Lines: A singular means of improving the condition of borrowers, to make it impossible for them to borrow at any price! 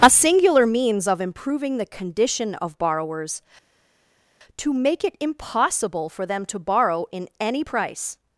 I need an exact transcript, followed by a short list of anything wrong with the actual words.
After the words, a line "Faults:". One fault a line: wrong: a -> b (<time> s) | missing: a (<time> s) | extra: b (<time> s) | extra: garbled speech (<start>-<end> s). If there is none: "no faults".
A singular means of improving the condition of borrowers, to make it impossible for them to borrow in any price!
Faults:
wrong: at -> in (7.1 s)